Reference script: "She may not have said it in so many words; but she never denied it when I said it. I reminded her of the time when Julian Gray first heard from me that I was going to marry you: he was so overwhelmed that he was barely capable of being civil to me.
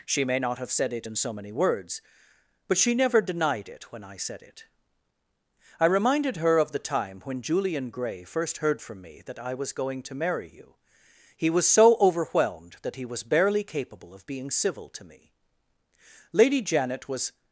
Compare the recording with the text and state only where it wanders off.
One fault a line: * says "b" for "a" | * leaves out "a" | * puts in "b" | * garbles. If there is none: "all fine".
* puts in "Lady Janet was"